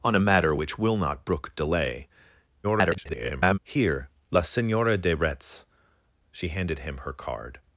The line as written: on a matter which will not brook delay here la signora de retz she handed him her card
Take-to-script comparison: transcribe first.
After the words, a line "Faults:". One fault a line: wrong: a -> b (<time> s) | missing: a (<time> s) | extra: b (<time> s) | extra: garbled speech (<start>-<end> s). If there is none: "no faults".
on a matter which will not brook delay [garbled] here la signora de retz she handed him her card
Faults:
extra: garbled speech (2.6-3.6 s)